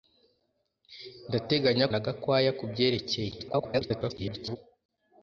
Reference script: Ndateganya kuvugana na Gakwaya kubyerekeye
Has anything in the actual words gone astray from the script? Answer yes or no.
yes